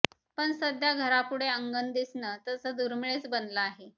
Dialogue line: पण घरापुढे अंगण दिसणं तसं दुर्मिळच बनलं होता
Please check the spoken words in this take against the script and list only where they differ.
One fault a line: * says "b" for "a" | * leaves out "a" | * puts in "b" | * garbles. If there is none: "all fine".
* puts in "सध्या"
* says "आहे" for "होता"